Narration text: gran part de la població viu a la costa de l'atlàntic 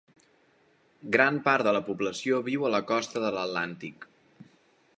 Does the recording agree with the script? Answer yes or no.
yes